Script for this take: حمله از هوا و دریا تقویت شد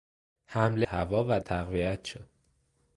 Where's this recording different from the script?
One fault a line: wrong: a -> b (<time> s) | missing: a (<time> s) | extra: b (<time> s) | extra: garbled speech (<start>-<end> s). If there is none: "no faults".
missing: از (0.9 s)
missing: دریا (1.4 s)